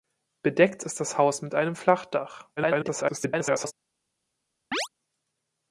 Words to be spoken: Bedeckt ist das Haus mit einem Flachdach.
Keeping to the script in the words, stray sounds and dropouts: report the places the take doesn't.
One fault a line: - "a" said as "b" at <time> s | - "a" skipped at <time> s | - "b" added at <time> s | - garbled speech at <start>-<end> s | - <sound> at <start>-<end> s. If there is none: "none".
- garbled speech at 2.6-3.7 s
- chirp at 4.7-4.9 s